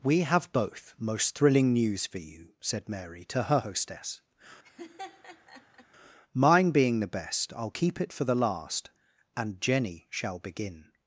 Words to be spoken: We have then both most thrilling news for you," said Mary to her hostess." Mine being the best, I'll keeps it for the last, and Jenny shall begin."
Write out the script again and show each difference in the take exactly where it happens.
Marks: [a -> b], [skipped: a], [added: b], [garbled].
We have [skipped: then] both most thrilling news for you," said Mary to her hostess." Mine being the best, I'll [keeps -> keep] it for the last, and Jenny shall begin."